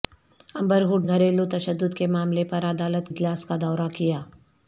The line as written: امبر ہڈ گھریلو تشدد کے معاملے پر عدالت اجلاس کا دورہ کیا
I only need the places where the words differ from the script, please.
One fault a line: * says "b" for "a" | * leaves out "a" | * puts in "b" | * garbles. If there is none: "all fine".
all fine